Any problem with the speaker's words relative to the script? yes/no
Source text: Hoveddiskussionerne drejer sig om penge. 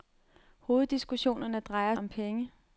yes